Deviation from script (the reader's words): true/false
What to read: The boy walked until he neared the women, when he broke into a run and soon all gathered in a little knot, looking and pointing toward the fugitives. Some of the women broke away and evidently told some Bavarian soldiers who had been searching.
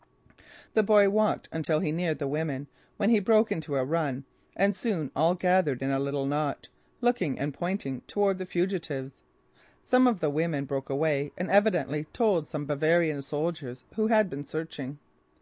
false